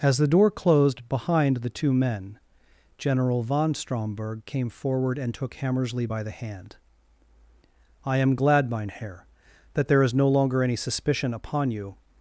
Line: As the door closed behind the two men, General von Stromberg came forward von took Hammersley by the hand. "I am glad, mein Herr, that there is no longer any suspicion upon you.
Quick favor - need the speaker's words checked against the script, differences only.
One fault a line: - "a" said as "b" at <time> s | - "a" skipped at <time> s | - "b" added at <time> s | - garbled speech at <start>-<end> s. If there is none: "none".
- "von" said as "and" at 5.2 s